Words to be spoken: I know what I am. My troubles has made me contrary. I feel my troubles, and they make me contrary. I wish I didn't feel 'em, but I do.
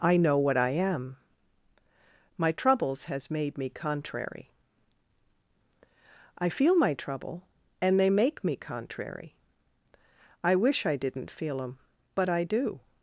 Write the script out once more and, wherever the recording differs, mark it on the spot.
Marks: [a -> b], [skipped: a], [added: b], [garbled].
I know what I am. My troubles has made me contrary. I feel my [troubles, -> trouble] and they make me contrary. I wish I didn't feel 'em, but I do.